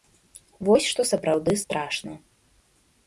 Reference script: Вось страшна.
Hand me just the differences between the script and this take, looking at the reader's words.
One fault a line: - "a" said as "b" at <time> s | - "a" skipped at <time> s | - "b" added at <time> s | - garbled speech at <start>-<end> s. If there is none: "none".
- "што сапраўды" added at 0.9 s